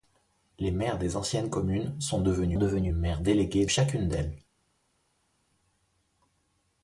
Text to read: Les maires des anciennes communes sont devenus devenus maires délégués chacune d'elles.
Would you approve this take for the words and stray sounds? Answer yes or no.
yes